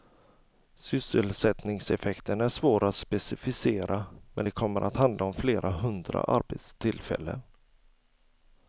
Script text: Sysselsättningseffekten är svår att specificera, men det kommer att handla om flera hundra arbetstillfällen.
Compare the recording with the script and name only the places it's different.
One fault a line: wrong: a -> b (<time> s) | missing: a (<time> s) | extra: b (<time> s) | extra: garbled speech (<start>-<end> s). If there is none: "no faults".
no faults